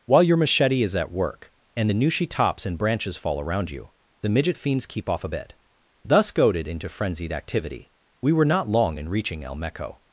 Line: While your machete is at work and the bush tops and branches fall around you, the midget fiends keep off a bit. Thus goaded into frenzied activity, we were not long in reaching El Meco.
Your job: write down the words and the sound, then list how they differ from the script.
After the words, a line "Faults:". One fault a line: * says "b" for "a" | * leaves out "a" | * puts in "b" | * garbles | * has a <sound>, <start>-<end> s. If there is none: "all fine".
While your machete is at work and the nushi tops and branches fall around you, the midget fiends keep off a bit. Thus goaded into frenzied activity, we were not long in reaching El Meco.
Faults:
* says "nushi" for "bush"